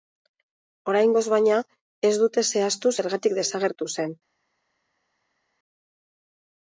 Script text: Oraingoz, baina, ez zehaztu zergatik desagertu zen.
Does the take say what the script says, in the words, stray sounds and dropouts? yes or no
no